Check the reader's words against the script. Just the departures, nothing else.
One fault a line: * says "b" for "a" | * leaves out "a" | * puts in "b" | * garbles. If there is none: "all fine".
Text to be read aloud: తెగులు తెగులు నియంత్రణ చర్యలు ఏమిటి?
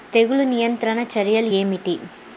* leaves out "తెగులు"